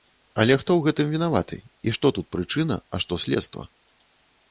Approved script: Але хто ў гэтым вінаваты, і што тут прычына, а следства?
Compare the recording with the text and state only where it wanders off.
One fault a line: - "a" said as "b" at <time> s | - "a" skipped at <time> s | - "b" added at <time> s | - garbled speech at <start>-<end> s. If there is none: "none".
- "што" added at 3.1 s